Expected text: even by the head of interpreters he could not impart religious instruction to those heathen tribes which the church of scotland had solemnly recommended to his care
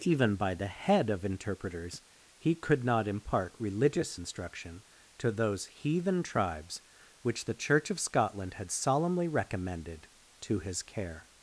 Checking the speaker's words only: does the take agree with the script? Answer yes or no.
yes